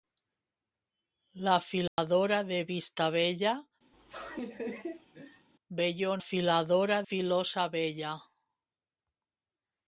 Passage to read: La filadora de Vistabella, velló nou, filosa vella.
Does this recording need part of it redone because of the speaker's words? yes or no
yes